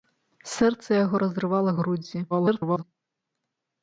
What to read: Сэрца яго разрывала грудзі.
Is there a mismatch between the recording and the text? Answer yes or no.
yes